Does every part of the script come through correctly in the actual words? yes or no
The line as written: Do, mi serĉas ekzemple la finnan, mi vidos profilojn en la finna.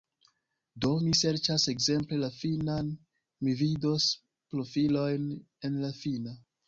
yes